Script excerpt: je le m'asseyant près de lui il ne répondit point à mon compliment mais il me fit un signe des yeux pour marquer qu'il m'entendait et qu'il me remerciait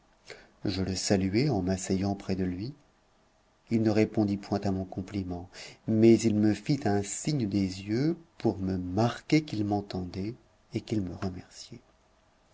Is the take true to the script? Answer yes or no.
no